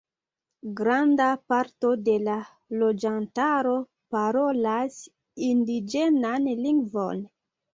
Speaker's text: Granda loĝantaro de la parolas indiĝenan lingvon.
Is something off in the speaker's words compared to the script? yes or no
yes